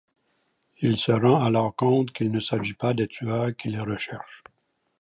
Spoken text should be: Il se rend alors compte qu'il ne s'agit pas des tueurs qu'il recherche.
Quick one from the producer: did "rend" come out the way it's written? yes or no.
yes